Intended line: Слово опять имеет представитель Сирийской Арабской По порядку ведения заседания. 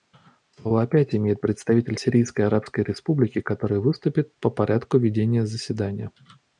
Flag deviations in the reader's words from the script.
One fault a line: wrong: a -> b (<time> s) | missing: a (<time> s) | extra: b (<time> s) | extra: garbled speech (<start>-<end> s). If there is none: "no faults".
extra: Республики который выступит (2.8 s)